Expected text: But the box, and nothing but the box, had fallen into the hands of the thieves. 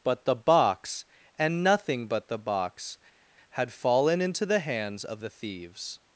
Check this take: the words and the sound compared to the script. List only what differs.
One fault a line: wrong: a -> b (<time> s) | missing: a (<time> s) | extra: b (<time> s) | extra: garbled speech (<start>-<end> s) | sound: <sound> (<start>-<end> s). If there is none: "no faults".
no faults